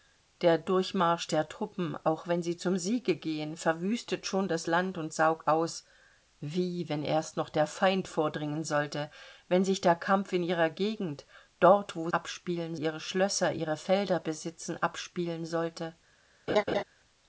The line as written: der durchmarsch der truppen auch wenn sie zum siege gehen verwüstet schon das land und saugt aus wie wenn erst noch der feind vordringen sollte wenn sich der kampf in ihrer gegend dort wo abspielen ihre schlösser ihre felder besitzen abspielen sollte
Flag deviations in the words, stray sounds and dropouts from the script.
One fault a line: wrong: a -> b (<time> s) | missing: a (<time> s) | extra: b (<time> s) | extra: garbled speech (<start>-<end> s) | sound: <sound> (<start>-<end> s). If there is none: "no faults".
sound: laugh (16.5-16.8 s)